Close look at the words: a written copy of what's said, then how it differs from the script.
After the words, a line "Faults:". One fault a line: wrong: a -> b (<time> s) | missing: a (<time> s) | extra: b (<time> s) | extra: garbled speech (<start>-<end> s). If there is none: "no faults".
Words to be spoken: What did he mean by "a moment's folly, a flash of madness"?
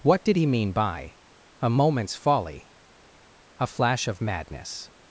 What did he mean by "a moment's folly, a flash of madness"?
Faults:
no faults